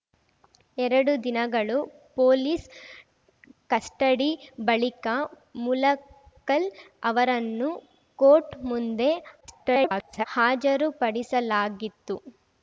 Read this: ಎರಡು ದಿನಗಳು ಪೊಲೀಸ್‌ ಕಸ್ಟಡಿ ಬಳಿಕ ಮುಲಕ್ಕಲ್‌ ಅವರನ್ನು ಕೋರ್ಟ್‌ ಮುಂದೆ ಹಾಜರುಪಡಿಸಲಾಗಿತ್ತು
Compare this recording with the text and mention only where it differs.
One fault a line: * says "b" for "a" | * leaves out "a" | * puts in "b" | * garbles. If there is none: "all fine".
* garbles